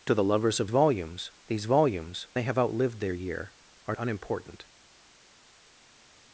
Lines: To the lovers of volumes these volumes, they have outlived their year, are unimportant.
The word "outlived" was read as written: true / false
true